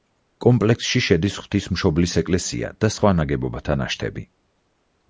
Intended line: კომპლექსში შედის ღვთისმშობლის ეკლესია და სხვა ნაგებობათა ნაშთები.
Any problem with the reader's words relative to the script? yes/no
no